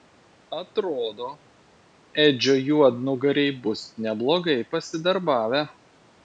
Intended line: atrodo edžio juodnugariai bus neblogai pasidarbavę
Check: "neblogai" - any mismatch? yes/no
no